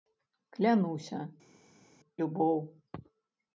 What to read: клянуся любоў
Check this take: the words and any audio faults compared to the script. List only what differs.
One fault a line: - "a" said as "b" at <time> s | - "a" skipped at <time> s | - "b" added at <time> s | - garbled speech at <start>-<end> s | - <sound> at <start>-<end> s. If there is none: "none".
none